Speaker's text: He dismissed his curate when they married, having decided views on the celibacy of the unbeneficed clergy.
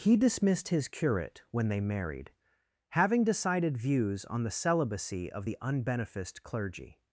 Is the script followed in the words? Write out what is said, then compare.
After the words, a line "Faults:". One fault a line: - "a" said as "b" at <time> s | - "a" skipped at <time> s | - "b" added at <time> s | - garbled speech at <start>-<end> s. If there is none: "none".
He dismissed his curate when they married, having decided views on the celibacy of the unbeneficed clergy.
Faults:
none